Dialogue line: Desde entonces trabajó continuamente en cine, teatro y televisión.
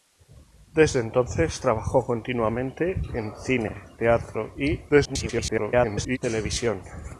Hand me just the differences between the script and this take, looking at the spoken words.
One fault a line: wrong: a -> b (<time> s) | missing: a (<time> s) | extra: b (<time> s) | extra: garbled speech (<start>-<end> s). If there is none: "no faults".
extra: garbled speech (4.9-6.2 s)